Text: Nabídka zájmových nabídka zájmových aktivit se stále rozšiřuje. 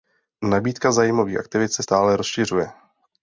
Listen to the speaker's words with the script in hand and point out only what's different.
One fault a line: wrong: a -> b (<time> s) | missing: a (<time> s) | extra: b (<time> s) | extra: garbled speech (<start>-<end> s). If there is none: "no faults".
missing: nabídka zájmových (1.4 s)